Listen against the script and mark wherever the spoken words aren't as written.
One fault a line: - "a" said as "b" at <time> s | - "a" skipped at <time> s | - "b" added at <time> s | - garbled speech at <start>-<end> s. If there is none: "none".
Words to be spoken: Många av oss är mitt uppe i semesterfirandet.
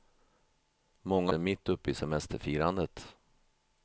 - "av oss" skipped at 1.3 s